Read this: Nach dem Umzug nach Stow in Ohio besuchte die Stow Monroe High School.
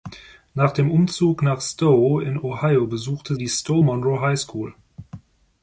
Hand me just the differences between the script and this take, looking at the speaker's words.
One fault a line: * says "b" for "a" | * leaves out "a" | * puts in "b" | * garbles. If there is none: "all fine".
all fine